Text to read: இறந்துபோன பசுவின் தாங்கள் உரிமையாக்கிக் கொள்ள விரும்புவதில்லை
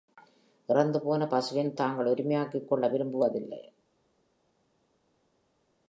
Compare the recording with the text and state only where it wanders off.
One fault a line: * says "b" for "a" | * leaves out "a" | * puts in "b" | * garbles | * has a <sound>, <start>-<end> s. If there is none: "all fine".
all fine